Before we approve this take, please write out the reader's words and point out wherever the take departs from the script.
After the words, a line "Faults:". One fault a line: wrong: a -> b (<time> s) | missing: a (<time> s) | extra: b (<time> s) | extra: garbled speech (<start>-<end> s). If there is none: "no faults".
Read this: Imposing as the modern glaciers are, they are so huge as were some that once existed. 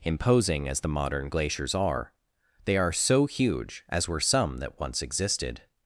Imposing as the modern glaciers are, they are so huge as were some that once existed.
Faults:
no faults